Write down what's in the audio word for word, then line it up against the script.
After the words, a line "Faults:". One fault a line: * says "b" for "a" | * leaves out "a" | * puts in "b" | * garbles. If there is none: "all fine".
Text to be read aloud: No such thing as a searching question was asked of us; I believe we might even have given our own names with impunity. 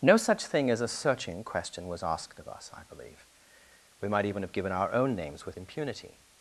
No such thing as a searching question was asked of us; I believe we might even have given our own names with impunity.
Faults:
all fine